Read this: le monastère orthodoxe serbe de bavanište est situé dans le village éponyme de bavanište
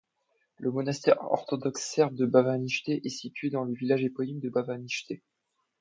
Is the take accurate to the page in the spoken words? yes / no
yes